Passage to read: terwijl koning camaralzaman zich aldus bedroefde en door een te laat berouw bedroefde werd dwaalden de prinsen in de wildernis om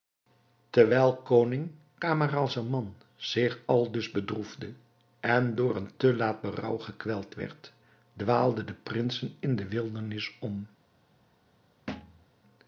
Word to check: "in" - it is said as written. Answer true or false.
true